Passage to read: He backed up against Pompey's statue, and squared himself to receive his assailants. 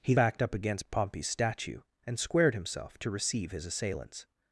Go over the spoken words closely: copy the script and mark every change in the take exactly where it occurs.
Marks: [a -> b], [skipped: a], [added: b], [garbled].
He backed up against Pompey's statue, and squared himself to receive his assailants.